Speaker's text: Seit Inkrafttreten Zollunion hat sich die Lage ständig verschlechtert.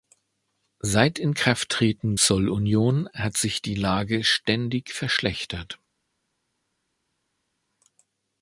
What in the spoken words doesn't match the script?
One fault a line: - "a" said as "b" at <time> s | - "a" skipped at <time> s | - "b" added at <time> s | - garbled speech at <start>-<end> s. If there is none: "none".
none